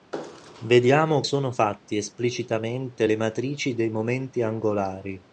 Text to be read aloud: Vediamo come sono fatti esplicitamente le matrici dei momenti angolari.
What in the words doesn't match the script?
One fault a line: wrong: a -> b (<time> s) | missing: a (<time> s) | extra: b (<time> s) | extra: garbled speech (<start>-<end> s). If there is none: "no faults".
missing: come (1.2 s)